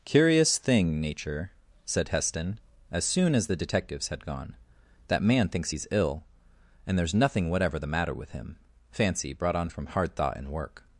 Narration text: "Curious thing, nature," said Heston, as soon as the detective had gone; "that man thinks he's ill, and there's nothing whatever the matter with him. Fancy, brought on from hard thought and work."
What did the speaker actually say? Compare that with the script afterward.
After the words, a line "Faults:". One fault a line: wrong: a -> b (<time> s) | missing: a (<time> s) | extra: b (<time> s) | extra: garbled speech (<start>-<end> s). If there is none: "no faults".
"Curious thing, nature," said Heston, as soon as the detectives had gone; "that man thinks he's ill, and there's nothing whatever the matter with him. Fancy, brought on from hard thought and work."
Faults:
wrong: detective -> detectives (3.6 s)